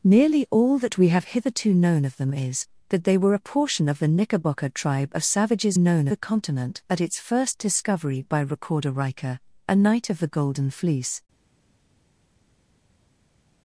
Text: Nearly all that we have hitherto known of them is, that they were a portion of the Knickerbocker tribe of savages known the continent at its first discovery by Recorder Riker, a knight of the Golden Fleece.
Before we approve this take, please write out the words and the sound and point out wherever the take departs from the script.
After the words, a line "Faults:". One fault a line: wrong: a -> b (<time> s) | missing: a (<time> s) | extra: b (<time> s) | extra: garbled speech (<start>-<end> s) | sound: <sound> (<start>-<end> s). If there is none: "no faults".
Nearly all that we have hitherto known of them is, that they were a portion of the Knickerbocker tribe of savages known the continent at its first discovery by Recorder Riker, a knight of the Golden Fleece.
Faults:
no faults